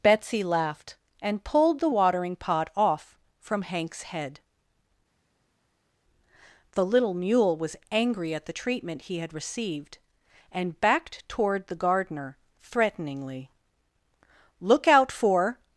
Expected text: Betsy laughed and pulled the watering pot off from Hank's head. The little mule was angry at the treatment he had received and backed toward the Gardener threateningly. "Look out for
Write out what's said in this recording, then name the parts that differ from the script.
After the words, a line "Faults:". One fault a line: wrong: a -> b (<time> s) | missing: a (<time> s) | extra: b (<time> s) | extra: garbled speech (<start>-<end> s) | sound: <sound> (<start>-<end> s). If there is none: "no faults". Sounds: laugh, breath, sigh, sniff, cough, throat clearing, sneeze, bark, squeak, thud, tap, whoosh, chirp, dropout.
Betsy laughed and pulled the watering pot off from Hank's head. The little mule was angry at the treatment he had received and backed toward the Gardener threateningly. "Look out for
Faults:
no faults